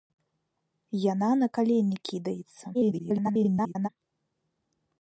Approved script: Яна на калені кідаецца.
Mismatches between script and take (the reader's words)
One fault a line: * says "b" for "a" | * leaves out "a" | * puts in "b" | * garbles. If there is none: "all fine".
* garbles